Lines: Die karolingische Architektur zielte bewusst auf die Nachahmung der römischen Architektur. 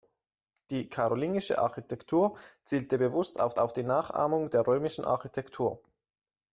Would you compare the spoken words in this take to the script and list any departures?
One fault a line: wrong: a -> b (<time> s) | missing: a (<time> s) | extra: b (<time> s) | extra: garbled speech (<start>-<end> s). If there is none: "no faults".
extra: auf (3.6 s)